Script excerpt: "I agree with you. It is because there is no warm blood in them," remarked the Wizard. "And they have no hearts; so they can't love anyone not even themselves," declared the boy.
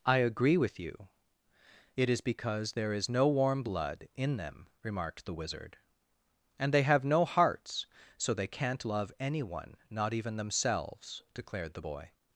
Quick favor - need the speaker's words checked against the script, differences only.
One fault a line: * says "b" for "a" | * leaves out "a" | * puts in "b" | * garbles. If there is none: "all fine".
all fine